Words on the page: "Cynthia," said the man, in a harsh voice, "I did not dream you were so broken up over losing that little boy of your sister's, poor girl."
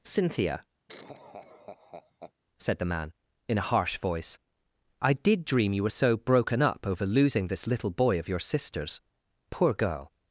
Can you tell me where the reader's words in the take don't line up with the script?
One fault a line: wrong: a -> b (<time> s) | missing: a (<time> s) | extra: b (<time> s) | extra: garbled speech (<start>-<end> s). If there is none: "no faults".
missing: not (5.4 s)
wrong: that -> this (7.5 s)